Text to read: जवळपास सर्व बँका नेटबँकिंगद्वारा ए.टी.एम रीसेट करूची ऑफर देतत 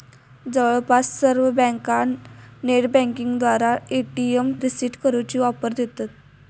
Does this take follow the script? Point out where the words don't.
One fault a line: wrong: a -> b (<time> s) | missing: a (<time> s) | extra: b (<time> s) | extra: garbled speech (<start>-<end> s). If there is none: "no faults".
no faults